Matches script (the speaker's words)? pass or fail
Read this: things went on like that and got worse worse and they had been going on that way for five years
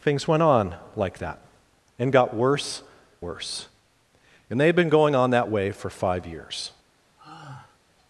pass